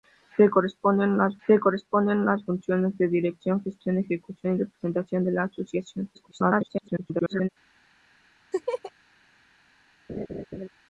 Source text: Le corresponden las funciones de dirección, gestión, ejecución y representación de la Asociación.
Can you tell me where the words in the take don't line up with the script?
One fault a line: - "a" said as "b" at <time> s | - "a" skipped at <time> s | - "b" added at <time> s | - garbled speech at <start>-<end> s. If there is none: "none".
- "le corresponden las" added at 1.5 s
- garbled speech at 6.1-7.5 s